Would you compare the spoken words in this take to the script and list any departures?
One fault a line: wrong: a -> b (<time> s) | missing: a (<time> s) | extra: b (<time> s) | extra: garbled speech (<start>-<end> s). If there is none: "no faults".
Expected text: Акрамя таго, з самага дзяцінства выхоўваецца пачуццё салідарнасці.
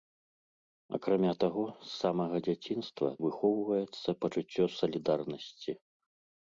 no faults